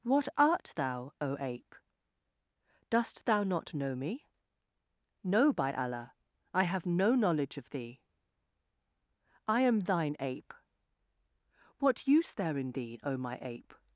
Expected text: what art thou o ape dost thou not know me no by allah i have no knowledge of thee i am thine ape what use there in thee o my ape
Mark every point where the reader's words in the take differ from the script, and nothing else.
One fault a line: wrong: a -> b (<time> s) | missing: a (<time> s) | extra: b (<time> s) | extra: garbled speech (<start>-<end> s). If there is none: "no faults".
no faults